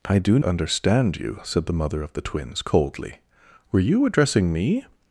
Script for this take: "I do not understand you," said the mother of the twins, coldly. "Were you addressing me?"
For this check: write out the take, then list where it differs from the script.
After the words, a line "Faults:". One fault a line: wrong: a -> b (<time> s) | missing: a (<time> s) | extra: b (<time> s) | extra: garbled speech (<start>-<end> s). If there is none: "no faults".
"I do understand you," said the mother of the twins, coldly. "Were you addressing me?"
Faults:
missing: not (0.4 s)